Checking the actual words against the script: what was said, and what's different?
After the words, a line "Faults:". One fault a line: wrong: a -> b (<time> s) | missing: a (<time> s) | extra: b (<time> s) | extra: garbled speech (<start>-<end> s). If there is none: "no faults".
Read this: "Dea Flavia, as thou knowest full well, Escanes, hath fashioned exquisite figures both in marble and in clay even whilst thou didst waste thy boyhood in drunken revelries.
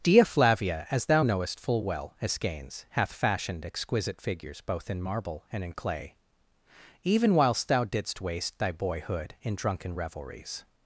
"Dea Flavia, as thou knowest full well, Escanes, hath fashioned exquisite figures both in marble and in clay even whilst thou didst waste thy boyhood in drunken revelries.
Faults:
no faults